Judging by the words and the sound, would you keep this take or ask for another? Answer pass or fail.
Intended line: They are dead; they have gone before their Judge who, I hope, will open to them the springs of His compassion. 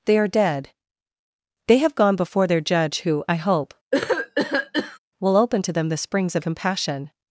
fail